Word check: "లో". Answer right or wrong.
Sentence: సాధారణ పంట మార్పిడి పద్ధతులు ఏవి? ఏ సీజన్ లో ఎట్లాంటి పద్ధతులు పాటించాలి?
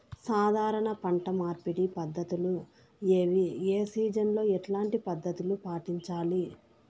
right